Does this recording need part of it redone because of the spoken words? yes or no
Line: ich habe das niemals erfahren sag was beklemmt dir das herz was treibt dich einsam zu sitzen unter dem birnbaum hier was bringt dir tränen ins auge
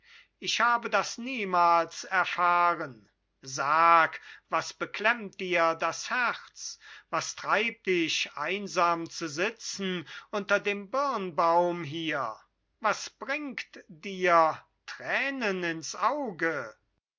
no